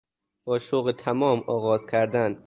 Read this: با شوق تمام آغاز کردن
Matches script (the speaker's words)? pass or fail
pass